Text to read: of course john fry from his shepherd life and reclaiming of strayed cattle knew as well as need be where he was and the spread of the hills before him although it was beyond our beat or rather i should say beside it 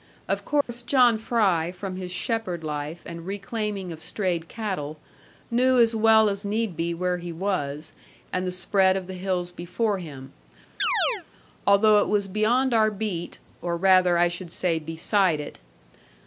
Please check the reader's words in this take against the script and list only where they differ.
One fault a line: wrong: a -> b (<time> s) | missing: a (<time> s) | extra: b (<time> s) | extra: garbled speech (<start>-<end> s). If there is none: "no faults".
no faults